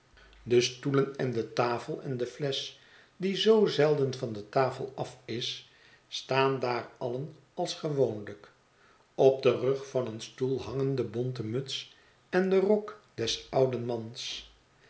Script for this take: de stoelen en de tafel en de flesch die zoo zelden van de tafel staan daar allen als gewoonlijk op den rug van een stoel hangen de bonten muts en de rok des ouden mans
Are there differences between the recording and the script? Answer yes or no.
yes